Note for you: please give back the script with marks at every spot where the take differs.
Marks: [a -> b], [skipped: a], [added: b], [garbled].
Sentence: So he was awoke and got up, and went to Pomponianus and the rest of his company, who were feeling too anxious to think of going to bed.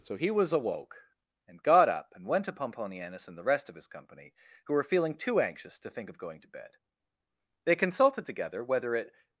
So he was awoke and got up, and went to Pomponianus and the rest of his company, who were feeling too anxious to think of going to bed. [added: They consulted together whether it]